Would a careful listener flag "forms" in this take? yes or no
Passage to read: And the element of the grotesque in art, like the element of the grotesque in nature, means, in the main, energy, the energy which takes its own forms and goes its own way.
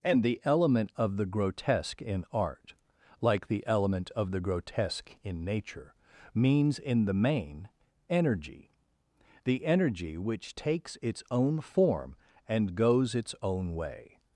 yes